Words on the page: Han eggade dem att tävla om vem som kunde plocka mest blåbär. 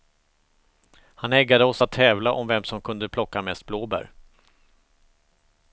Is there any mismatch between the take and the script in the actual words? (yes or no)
yes